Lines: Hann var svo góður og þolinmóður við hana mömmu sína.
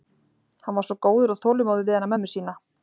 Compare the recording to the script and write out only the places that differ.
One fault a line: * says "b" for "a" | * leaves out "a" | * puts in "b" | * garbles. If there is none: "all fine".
all fine